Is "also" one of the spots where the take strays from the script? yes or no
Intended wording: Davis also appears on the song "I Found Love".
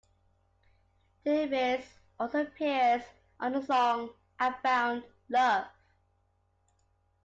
no